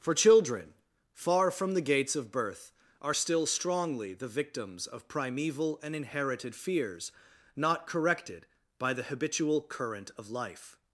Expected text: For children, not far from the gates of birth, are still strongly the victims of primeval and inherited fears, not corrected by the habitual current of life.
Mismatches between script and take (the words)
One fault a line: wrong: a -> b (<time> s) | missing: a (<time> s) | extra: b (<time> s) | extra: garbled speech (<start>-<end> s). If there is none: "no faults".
missing: not (0.7 s)